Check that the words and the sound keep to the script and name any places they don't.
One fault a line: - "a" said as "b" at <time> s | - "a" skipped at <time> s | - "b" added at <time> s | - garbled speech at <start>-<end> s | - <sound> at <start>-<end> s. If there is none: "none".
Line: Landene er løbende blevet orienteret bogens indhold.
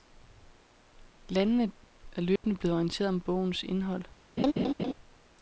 - dropout at 2.4-2.4 s
- "om" added at 3.1 s
- laugh at 4.4-4.9 s